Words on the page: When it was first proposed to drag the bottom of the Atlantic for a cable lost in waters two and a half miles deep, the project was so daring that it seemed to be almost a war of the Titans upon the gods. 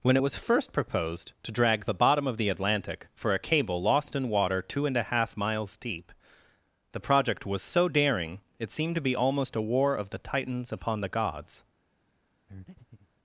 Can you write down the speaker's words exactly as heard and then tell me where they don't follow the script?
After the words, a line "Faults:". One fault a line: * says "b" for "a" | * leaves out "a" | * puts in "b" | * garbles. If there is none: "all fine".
When it was first proposed to drag the bottom of the Atlantic for a cable lost in water two and a half miles deep, the project was so daring it seemed to be almost a war of the Titans upon the gods.
Faults:
* says "water" for "waters"
* leaves out "that"